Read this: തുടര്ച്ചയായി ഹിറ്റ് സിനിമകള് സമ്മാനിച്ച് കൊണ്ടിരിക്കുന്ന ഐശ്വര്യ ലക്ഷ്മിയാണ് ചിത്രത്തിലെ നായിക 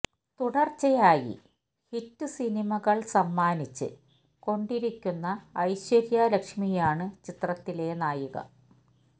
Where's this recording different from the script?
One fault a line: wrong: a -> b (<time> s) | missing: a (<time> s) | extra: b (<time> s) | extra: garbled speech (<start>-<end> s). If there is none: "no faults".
no faults